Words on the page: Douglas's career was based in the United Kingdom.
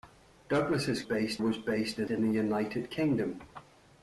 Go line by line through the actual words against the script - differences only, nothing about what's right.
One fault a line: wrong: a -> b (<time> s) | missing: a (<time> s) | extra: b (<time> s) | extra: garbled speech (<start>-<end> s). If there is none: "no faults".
wrong: career -> based (1.0 s)
extra: in (2.1 s)